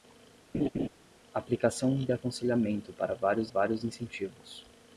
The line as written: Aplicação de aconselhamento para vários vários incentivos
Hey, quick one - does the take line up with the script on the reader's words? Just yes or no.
yes